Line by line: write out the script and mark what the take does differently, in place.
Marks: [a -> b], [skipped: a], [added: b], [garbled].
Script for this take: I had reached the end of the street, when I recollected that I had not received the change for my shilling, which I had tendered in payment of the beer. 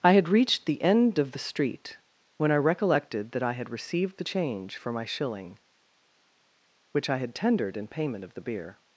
I had reached the end of the street, when I recollected that I had [skipped: not] received the change for my shilling, which I had tendered in payment of the beer.